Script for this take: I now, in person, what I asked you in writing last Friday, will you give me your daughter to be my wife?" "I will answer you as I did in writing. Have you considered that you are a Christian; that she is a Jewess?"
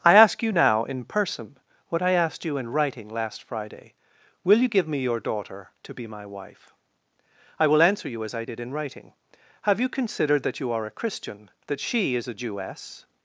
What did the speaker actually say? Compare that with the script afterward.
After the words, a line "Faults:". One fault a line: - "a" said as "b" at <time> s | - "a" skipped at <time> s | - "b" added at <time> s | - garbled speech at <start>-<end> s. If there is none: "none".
I ask you now, in person, what I asked you in writing last Friday, will you give me your daughter to be my wife?" "I will answer you as I did in writing. Have you considered that you are a Christian; that she is a Jewess?"
Faults:
- "ask you" added at 0.1 s